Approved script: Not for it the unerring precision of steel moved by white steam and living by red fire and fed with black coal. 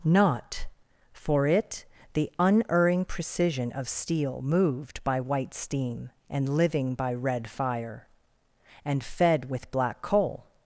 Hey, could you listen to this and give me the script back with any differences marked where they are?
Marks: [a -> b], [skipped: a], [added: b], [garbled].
Not for it the unerring precision of steel moved by white steam and living by red fire and fed with black coal.